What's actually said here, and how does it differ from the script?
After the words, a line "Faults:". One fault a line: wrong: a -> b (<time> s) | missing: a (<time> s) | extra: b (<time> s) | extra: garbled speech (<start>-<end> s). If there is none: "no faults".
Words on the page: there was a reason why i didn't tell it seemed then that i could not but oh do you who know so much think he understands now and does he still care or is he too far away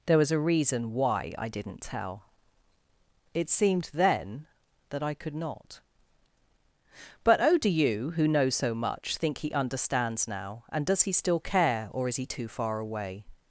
there was a reason why i didn't tell it seemed then that i could not but oh do you who know so much think he understands now and does he still care or is he too far away
Faults:
no faults